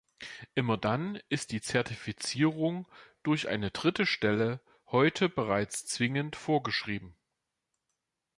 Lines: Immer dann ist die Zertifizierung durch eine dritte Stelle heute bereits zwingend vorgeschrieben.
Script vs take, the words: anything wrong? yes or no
no